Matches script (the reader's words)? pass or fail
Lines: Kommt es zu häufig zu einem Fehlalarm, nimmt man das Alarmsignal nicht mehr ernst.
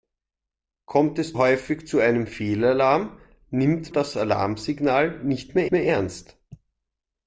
fail